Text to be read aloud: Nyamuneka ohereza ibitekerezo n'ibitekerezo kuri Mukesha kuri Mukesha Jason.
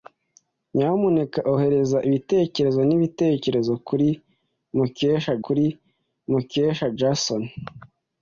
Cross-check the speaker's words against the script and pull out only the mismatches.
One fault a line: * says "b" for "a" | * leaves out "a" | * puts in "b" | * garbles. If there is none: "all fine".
all fine